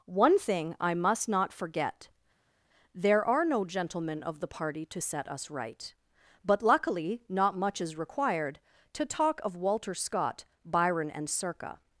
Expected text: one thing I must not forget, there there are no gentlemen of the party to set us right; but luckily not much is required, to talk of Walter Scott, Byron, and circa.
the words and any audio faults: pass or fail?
fail